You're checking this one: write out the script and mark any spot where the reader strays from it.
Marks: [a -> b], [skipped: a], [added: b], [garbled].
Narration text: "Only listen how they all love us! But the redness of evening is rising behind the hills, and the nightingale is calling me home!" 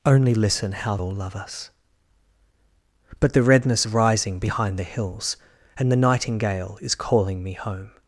"Only listen how [skipped: they] all love us! But the redness [skipped: of evening is] rising behind the hills, and the nightingale is calling me home!"